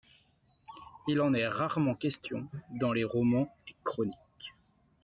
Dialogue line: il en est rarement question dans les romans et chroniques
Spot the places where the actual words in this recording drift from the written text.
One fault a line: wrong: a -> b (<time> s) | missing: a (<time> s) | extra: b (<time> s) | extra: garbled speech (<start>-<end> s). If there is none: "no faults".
no faults